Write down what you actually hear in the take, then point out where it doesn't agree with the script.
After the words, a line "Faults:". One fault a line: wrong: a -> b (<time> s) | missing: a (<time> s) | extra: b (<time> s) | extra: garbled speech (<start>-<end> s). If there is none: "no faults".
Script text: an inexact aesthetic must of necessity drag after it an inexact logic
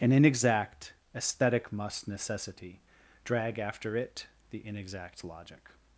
an inexact aesthetic must necessity drag after it the inexact logic
Faults:
missing: of (2.1 s)
wrong: an -> the (4.5 s)